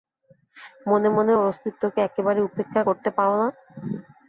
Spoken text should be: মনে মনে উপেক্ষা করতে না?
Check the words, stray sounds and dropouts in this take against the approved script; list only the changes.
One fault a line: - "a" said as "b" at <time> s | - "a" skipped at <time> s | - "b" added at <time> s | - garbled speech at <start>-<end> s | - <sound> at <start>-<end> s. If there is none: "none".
- "ওর অস্তিত্বকে একেবারে" added at 1.3 s
- "পার" added at 3.2 s